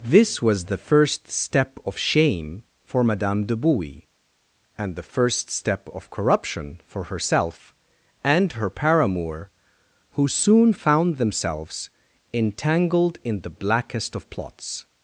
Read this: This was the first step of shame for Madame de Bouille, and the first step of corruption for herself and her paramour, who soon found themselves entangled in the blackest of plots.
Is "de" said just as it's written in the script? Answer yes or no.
yes